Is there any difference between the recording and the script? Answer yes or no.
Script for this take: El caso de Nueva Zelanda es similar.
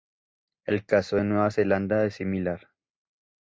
no